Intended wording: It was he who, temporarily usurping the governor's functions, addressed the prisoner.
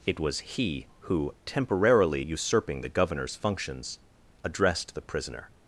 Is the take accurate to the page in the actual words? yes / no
yes